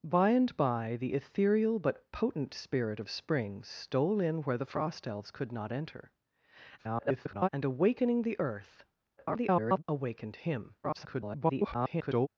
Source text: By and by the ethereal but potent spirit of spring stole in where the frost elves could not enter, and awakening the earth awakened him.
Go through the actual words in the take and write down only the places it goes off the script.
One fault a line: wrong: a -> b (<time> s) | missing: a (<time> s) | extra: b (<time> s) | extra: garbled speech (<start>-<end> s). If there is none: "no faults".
extra: garbled speech (6.8-7.5 s)
extra: garbled speech (9.2-9.8 s)
extra: garbled speech (10.8-12.3 s)